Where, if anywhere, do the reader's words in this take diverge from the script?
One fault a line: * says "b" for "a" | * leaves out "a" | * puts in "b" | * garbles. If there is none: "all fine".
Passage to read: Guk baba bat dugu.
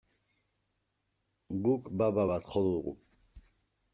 * puts in "jo"